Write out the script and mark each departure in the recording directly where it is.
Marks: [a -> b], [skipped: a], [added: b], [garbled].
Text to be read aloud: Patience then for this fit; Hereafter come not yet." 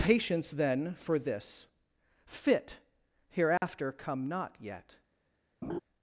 Patience then for this fit; Hereafter come not yet."